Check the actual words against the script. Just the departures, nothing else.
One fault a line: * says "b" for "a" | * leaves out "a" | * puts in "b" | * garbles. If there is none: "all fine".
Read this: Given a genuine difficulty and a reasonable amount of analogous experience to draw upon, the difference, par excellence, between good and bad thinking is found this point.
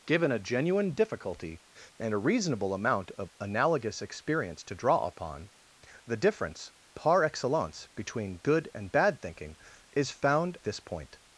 all fine